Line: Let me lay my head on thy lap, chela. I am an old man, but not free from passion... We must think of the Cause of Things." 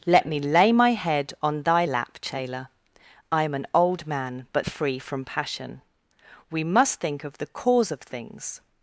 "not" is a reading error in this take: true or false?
true